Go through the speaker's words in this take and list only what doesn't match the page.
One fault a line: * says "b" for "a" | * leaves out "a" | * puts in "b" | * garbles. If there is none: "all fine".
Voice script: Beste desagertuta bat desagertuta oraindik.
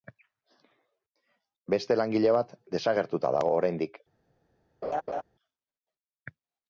* says "langile" for "desagertuta"
* puts in "dago"